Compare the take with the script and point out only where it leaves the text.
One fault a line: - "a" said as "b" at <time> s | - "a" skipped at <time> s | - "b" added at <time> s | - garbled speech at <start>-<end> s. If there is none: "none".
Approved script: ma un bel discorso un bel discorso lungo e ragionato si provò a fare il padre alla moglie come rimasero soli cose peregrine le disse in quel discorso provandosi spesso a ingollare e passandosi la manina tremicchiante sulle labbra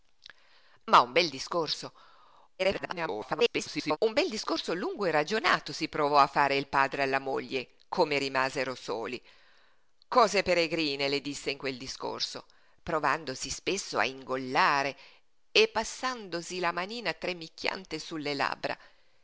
- garbled speech at 2.6-4.0 s